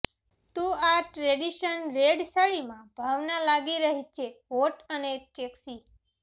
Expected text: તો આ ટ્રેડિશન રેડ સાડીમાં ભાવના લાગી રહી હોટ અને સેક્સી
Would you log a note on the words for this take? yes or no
yes